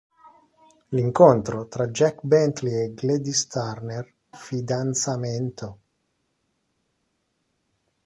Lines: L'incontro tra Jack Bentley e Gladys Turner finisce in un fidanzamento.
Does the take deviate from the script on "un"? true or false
true